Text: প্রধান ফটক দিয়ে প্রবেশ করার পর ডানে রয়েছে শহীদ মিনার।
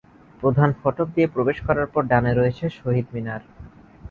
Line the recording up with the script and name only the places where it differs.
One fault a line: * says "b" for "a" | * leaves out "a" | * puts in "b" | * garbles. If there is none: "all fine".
all fine